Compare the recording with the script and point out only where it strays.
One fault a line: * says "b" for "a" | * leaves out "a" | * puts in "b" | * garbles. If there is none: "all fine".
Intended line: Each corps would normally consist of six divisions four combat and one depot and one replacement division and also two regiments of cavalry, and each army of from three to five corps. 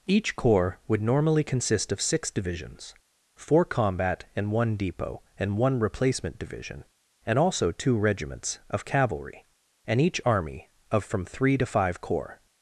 all fine